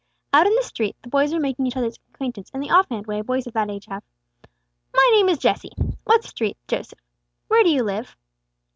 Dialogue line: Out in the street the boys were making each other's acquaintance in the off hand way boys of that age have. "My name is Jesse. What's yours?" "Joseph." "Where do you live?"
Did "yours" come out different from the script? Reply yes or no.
yes